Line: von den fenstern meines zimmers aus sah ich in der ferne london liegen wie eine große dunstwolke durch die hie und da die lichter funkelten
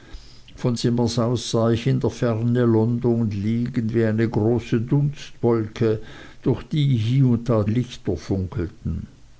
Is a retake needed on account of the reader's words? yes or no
yes